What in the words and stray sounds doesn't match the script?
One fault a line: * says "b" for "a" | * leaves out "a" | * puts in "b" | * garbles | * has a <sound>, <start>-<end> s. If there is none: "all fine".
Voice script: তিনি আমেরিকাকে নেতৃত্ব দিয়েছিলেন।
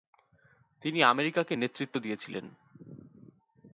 all fine